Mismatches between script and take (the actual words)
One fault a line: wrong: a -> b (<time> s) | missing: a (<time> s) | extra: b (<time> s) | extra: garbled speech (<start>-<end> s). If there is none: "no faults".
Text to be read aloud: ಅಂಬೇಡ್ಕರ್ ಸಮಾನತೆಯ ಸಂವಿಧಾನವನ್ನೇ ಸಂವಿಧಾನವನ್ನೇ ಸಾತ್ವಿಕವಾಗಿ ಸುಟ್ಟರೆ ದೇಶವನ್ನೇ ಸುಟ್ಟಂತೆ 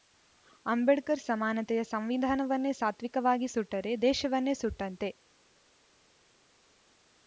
missing: ಸಂವಿಧಾನವನ್ನೇ (2.7 s)